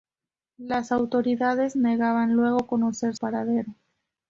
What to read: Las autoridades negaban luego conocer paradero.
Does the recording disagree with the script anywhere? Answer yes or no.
no